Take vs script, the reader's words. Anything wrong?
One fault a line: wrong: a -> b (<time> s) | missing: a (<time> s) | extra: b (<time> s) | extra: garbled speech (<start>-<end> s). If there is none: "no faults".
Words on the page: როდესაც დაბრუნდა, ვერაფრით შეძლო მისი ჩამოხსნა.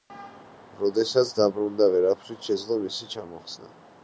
no faults